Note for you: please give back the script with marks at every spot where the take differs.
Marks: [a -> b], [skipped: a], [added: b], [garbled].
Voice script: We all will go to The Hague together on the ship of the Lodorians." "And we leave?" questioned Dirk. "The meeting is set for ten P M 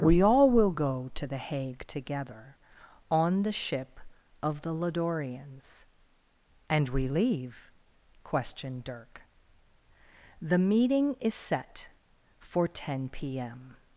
We all will go to The Hague together on the ship of the Lodorians." "And we leave?" questioned Dirk. "The meeting is set for ten P M